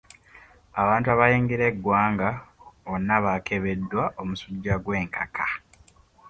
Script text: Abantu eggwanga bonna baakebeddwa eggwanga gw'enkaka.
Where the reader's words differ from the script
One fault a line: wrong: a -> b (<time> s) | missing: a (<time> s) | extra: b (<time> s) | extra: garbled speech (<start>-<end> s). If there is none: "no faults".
extra: abayingira (1.1 s)
wrong: eggwanga -> omusujja (4.2 s)